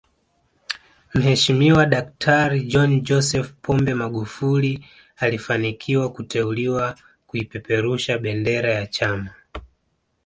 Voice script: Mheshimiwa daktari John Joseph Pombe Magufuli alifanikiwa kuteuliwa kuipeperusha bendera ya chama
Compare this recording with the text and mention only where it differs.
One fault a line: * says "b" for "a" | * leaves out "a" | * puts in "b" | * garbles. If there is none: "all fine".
all fine